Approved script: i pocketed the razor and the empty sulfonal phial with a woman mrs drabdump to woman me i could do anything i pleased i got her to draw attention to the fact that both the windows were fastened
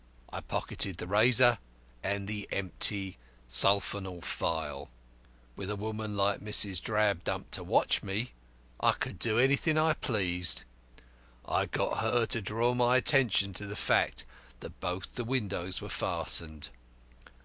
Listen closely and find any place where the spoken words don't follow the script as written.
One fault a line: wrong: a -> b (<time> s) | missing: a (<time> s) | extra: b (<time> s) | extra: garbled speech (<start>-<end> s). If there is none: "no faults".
extra: like (6.2 s)
wrong: woman -> watch (7.6 s)
extra: my (12.7 s)